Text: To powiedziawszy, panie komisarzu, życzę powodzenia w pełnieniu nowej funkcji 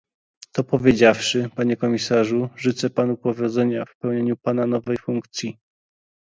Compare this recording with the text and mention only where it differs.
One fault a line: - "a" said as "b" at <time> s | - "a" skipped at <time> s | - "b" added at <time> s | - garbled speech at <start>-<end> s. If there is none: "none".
- "panu" added at 2.9 s
- "pana" added at 4.3 s